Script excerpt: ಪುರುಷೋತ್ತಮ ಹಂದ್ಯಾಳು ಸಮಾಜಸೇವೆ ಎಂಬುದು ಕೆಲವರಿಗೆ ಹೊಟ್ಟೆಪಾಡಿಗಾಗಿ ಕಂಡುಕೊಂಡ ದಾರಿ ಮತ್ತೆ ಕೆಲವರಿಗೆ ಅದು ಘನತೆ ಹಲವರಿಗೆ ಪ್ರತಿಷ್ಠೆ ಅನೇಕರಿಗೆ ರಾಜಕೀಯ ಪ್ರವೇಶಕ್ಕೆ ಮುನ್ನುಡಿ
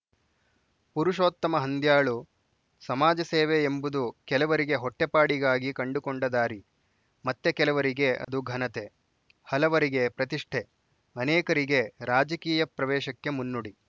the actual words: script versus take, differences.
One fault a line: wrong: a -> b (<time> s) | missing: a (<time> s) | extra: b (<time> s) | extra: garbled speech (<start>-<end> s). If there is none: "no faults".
no faults